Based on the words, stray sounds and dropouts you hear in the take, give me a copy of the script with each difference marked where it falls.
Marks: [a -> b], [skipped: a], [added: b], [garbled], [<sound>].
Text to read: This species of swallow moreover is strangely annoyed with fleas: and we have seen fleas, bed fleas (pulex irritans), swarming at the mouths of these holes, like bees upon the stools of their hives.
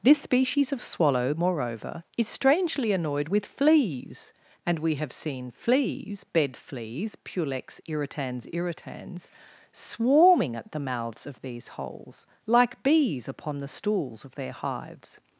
This species of swallow moreover is strangely annoyed with fleas: and we have seen fleas, bed fleas (pulex irritans), [added: irritans] swarming at the mouths of these holes, like bees upon the stools of their hives.